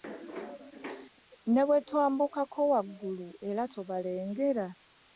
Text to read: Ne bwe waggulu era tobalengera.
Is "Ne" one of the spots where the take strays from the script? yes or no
no